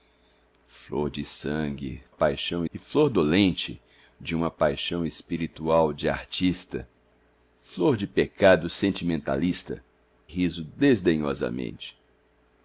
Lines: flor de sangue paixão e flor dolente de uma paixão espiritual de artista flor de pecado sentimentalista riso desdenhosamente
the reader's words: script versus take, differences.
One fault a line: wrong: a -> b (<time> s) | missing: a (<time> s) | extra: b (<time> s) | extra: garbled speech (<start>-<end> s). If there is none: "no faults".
no faults